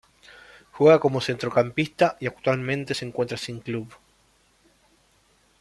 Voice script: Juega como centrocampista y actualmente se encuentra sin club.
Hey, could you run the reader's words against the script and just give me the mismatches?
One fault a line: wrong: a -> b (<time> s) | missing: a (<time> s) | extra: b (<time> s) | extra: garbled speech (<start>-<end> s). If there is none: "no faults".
no faults